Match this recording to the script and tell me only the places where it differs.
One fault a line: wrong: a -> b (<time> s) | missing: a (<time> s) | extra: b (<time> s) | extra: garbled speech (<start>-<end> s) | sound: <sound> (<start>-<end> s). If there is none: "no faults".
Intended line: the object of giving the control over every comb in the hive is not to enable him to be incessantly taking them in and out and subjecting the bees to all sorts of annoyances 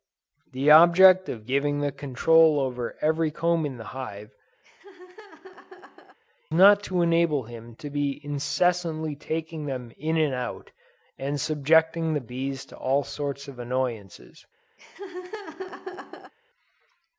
missing: is (4.3 s)
sound: laugh (4.6-6.2 s)
sound: laugh (14.8-16.3 s)